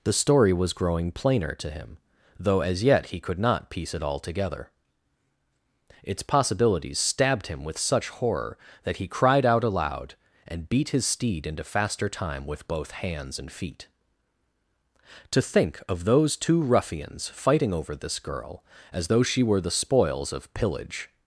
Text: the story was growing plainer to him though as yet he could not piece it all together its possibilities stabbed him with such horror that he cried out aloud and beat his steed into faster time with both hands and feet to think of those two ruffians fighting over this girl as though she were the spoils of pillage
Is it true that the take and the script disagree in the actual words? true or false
false